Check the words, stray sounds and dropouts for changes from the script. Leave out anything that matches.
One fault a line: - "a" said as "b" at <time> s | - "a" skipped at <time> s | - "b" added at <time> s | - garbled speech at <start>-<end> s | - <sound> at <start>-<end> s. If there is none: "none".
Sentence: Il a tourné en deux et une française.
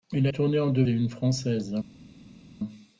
none